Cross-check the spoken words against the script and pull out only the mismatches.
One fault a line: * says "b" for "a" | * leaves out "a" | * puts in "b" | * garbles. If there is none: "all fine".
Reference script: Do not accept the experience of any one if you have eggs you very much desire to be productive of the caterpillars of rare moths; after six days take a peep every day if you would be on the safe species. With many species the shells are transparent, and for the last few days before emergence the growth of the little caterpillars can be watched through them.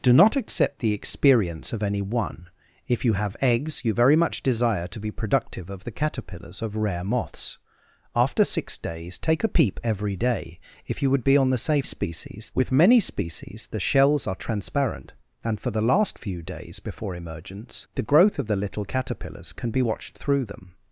all fine